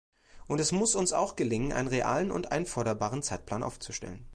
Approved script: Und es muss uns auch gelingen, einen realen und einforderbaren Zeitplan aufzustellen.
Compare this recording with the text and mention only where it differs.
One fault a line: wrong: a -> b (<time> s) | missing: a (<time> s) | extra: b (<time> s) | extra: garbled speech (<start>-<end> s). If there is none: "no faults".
no faults